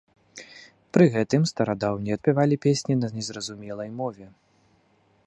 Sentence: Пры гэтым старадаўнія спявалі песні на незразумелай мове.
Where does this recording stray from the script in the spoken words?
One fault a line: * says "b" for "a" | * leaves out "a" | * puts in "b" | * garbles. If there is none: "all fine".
all fine